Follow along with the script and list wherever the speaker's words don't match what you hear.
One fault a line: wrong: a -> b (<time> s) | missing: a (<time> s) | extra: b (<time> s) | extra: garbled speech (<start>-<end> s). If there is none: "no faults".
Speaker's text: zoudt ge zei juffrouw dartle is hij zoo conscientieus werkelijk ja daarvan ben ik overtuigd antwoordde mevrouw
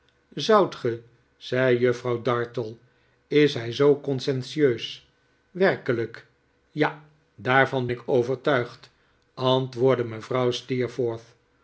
missing: ben (7.9 s)